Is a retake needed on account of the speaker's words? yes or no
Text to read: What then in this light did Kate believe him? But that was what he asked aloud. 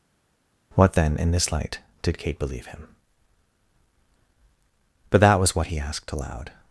no